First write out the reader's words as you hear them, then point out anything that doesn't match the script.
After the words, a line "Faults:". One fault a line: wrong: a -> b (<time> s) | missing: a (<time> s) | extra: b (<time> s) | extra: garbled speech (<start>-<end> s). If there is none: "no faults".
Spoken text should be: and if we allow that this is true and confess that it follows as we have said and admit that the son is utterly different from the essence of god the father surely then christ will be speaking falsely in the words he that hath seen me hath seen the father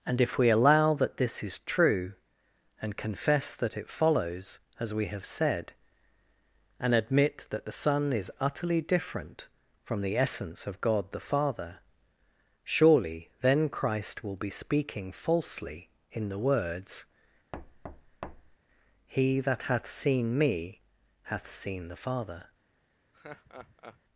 and if we allow that this is true and confess that it follows as we have said and admit that the son is utterly different from the essence of god the father surely then christ will be speaking falsely in the words he that hath seen me hath seen the father
Faults:
no faults